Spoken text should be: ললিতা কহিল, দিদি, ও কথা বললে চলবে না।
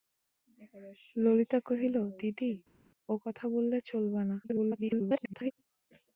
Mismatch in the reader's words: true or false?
true